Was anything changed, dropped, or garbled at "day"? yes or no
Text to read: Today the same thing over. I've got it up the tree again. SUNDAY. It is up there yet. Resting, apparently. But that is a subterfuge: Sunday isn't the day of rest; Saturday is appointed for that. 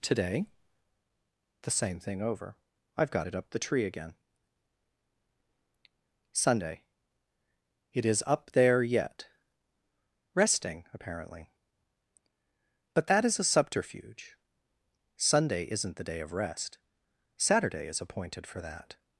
no